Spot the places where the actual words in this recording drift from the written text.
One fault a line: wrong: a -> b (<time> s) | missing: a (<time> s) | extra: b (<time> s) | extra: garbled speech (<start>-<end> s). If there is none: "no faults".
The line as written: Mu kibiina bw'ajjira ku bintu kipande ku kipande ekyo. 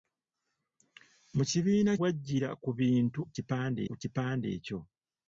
no faults